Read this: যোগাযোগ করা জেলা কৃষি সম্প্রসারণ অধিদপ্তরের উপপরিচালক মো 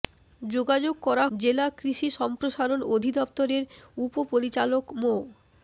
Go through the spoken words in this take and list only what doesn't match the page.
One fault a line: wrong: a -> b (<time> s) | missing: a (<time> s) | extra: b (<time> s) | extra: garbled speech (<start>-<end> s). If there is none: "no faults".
no faults